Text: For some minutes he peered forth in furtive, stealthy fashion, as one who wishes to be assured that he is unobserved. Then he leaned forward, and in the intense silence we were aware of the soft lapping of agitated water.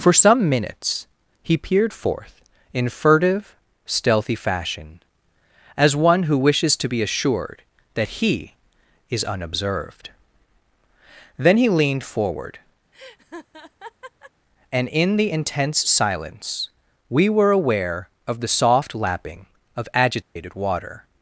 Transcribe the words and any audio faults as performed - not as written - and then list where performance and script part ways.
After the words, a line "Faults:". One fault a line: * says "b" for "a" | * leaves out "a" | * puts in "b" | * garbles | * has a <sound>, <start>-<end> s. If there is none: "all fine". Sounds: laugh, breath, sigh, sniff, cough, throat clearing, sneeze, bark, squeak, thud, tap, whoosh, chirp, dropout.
For some minutes he peered forth in furtive, stealthy fashion, as one who wishes to be assured that he is unobserved. Then he leaned forward, and in the intense silence we were aware of the soft lapping of agitated water.
Faults:
* has a laugh, 12.9-14.3 s
* has a dropout, 20.2-20.4 s